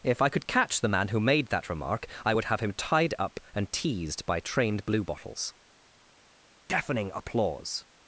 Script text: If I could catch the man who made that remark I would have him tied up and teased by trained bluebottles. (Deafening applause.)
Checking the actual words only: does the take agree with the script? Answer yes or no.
yes